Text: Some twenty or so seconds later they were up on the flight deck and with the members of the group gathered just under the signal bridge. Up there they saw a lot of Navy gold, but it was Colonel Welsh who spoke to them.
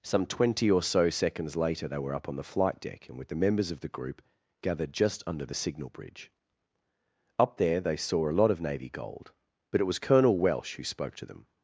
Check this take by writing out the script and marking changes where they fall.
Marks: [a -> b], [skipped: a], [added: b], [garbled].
Some twenty or so seconds later they were up on the flight deck and with the members of the group gathered just under the signal bridge. Up there they saw a lot of Navy gold, but it was Colonel Welsh who spoke to them.